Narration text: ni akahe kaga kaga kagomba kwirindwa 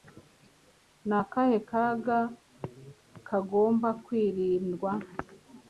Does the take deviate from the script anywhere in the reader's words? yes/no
yes